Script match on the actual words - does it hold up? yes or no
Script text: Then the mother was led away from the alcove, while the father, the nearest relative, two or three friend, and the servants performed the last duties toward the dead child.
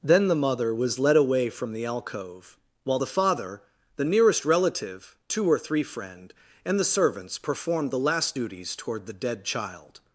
yes